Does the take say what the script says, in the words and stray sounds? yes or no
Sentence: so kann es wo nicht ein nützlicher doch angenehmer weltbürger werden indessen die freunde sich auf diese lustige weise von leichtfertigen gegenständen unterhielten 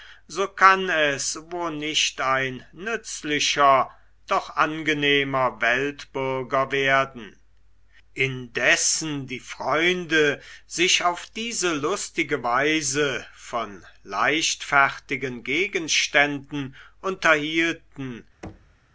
no